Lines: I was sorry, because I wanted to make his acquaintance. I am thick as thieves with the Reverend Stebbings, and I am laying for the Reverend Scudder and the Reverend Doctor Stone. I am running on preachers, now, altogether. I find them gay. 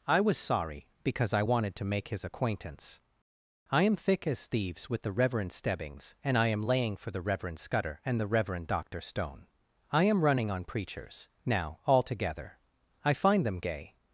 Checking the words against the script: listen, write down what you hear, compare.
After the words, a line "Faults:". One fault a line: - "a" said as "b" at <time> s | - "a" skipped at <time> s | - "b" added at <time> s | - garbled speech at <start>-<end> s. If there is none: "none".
I was sorry, because I wanted to make his acquaintance. I am thick as thieves with the Reverend Stebbings, and I am laying for the Reverend Scudder and the Reverend Doctor Stone. I am running on preachers, now, altogether. I find them gay.
Faults:
none